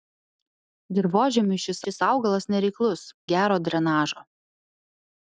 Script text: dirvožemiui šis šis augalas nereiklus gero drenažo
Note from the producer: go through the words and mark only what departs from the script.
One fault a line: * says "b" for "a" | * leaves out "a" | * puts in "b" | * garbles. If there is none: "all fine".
all fine